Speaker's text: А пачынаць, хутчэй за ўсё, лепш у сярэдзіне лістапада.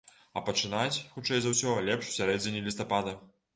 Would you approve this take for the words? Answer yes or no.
yes